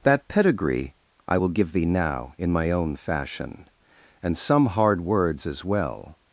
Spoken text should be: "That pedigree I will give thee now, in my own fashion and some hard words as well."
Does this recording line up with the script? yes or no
yes